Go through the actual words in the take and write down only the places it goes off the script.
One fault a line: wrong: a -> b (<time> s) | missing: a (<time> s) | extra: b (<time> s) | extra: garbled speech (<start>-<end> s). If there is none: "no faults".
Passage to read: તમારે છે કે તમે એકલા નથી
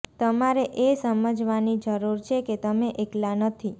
extra: એ સમજવાની જરૂર (0.8 s)